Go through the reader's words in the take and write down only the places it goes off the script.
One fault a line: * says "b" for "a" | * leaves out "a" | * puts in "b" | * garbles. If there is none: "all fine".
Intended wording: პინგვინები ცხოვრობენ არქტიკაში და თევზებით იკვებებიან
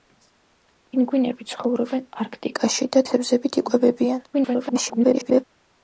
* garbles